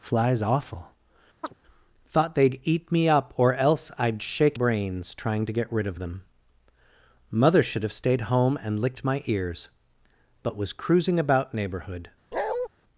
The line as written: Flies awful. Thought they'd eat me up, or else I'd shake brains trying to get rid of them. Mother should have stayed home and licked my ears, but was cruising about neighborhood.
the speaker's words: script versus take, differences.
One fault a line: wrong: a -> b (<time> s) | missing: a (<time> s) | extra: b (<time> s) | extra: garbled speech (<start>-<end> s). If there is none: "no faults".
no faults